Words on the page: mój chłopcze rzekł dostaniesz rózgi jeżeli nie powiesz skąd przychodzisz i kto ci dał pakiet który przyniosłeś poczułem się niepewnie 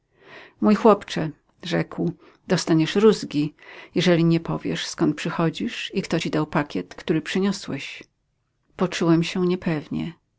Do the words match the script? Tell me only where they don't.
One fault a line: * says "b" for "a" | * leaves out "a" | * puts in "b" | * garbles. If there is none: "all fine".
all fine